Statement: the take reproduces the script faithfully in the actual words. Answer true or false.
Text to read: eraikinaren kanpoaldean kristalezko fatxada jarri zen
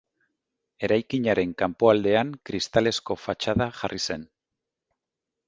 true